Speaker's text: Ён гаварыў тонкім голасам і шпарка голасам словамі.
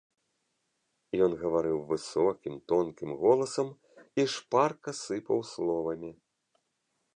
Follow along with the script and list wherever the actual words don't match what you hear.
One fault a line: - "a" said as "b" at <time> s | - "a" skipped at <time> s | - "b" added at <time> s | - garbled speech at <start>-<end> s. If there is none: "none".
- "высокім" added at 1.9 s
- "голасам" said as "сыпаў" at 5.0 s